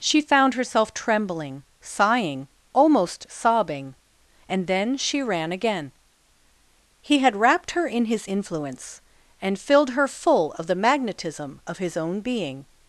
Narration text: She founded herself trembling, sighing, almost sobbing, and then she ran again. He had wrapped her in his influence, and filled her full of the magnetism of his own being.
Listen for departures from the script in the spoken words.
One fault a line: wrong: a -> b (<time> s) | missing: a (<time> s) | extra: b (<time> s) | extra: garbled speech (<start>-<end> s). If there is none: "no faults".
wrong: founded -> found (0.2 s)